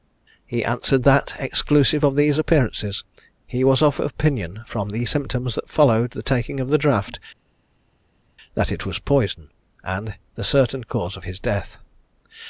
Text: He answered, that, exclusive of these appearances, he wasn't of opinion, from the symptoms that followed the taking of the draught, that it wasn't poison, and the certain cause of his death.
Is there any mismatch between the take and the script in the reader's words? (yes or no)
yes